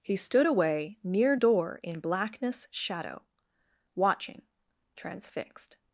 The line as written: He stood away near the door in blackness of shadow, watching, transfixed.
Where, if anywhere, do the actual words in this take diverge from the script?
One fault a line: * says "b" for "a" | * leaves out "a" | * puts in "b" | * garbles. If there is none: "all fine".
* leaves out "the"
* leaves out "of"